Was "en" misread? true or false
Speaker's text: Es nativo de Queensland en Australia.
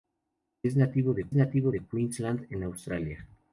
false